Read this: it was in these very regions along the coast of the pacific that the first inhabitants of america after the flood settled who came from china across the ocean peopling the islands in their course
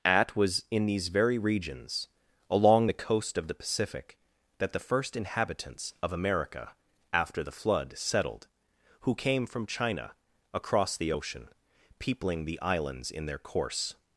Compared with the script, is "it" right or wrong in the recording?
wrong